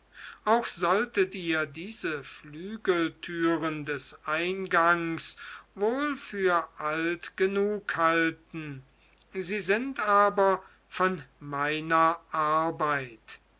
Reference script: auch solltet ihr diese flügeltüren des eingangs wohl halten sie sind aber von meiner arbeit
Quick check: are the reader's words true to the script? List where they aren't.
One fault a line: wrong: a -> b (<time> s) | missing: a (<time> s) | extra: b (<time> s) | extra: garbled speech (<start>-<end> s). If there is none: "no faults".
extra: für alt genug (6.2 s)